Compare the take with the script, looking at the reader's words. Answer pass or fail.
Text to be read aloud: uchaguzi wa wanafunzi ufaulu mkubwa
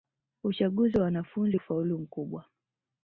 pass